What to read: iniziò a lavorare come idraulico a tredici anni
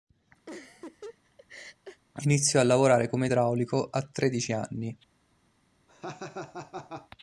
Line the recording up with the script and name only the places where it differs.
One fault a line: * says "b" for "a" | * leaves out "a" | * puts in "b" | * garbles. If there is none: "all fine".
all fine